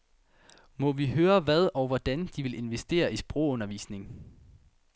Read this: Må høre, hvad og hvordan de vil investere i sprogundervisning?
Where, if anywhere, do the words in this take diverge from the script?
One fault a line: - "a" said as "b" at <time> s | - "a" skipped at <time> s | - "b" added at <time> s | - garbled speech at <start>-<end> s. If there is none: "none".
- "vi" added at 0.9 s